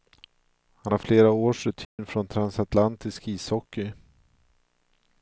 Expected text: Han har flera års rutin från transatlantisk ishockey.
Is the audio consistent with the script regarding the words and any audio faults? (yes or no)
no